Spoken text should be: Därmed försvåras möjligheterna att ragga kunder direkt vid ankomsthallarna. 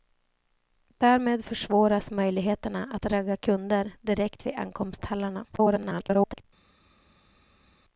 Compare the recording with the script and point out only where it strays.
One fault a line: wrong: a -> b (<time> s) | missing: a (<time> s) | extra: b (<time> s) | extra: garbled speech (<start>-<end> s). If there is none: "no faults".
extra: garbled speech (5.5-6.4 s)